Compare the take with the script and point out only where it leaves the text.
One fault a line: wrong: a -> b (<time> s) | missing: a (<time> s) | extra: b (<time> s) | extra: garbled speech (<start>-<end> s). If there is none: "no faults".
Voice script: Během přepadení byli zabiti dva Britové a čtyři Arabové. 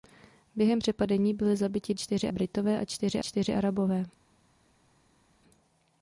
wrong: dva -> čtyři (1.9 s)
extra: čtyři (3.2 s)